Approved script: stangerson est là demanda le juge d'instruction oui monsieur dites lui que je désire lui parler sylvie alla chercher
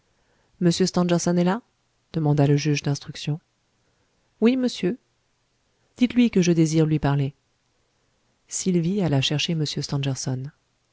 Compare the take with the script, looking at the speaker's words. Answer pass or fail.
pass